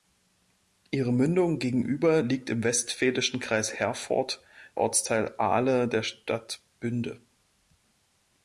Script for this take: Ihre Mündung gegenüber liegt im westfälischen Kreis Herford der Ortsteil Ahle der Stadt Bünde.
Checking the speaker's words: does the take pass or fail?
fail